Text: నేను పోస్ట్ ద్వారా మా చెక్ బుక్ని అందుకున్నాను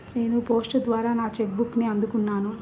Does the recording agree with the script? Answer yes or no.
no